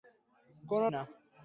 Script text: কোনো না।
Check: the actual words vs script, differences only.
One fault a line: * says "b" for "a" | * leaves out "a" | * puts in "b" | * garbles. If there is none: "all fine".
all fine